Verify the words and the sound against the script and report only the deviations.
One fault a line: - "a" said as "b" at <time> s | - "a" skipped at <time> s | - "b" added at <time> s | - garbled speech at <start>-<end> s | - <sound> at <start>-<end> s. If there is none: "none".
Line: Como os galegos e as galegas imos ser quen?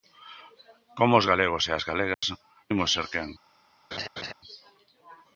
- dropout at 2.1-2.2 s
- laugh at 3.9-4.3 s